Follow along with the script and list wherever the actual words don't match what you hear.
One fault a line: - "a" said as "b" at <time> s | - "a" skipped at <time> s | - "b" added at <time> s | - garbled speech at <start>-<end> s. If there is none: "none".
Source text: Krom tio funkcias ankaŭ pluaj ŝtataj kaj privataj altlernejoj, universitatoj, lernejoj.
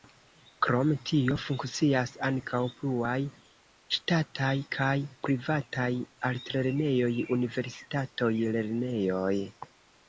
none